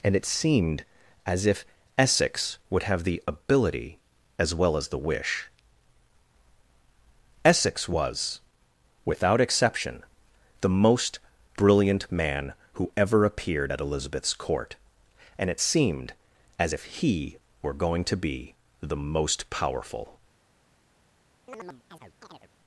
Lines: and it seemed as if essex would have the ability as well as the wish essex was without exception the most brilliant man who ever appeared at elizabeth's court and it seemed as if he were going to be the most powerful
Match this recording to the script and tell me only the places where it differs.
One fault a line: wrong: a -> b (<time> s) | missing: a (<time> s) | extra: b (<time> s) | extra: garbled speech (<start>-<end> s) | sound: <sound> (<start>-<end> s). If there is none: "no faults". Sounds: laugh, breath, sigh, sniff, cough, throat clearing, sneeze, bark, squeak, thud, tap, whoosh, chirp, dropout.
sound: chirp (21.5-22.5 s)